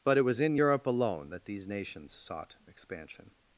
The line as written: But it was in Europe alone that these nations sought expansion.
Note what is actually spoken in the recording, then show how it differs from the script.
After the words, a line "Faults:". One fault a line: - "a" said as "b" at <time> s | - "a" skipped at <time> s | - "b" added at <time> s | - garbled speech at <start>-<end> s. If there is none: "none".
But it was in Europe alone that these nations sought expansion.
Faults:
none